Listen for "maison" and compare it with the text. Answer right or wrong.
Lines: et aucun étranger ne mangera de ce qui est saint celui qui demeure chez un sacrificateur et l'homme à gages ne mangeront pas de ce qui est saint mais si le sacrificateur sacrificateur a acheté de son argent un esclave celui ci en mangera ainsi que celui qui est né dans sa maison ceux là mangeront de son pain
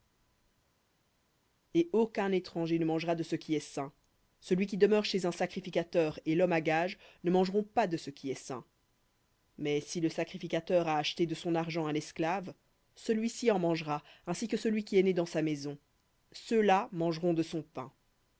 right